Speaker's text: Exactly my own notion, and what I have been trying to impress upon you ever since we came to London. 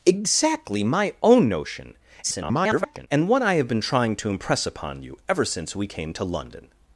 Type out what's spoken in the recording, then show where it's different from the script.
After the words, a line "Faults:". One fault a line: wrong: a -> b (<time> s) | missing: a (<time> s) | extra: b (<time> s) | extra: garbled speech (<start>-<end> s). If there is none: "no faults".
Exactly my own notion, [garbled] and what I have been trying to impress upon you ever since we came to London.
Faults:
extra: garbled speech (2.2-3.1 s)